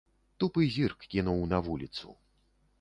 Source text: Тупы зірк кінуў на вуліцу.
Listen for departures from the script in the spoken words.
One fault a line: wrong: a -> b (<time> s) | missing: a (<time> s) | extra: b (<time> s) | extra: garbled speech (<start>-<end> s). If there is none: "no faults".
no faults